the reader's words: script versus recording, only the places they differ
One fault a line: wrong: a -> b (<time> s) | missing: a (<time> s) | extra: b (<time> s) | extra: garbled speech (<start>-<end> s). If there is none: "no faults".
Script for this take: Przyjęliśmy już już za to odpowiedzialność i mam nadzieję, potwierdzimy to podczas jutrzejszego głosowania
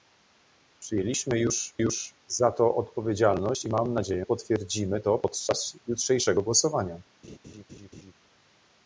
no faults